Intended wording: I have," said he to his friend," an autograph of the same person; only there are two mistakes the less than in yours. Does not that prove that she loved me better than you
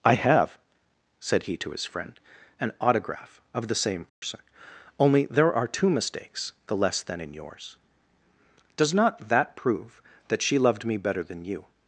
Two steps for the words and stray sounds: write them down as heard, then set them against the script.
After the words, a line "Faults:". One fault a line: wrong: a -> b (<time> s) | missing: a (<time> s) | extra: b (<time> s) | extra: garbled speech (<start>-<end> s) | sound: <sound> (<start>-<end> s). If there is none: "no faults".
I have," said he to his friend," an autograph of the same person; only there are two mistakes the less than in yours. Does not that prove that she loved me better than you
Faults:
sound: dropout (4.1-4.2 s)